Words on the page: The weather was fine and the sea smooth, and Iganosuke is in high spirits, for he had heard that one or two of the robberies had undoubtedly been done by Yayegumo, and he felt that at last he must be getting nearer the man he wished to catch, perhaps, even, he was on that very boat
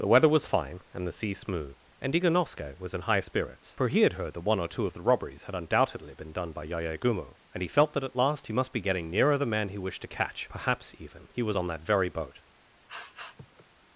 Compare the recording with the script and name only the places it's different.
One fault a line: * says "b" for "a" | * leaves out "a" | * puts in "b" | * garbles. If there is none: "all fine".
* says "was" for "is"